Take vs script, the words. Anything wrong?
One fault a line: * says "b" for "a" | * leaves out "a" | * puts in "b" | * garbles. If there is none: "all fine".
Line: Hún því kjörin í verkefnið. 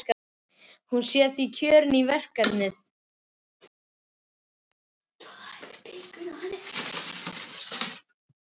* puts in "sé"